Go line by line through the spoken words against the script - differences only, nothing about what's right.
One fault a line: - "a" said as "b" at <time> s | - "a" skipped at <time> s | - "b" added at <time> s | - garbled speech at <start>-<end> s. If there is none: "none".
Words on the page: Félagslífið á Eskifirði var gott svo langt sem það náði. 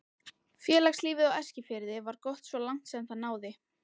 none